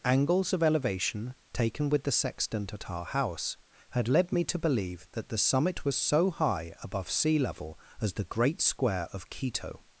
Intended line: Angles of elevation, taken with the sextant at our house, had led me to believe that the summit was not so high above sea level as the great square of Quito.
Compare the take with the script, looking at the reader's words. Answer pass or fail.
fail